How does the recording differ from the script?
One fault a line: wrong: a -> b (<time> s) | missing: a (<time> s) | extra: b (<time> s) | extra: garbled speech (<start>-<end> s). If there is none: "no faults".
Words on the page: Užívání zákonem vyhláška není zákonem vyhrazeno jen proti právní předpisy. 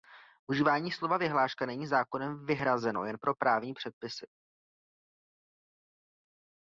wrong: zákonem -> slova (0.9 s)
wrong: proti -> pro (3.2 s)